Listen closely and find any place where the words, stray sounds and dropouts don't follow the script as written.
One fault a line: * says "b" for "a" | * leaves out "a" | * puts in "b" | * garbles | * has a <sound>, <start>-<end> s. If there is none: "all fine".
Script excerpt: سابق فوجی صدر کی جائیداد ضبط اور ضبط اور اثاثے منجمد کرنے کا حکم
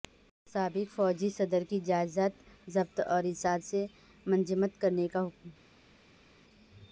* leaves out "ضبط اور"